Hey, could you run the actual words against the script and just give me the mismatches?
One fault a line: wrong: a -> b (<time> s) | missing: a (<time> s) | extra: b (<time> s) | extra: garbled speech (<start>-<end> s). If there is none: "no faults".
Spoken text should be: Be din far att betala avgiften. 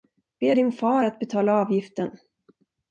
no faults